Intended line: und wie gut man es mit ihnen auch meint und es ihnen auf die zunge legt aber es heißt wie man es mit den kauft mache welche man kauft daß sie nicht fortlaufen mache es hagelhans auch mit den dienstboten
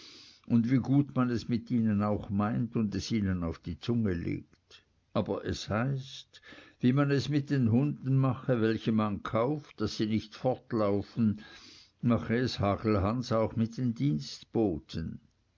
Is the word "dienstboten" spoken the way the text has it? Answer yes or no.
yes